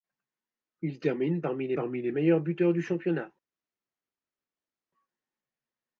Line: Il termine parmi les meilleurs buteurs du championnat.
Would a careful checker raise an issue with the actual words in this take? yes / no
yes